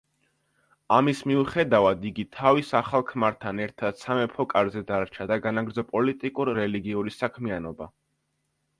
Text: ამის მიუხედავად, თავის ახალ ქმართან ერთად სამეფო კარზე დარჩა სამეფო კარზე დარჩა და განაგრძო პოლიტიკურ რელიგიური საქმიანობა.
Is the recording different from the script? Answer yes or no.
yes